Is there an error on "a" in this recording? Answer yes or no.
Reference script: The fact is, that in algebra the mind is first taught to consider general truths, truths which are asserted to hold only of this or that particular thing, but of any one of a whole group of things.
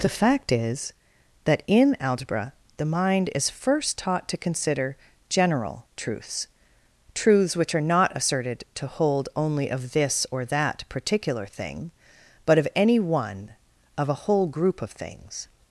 no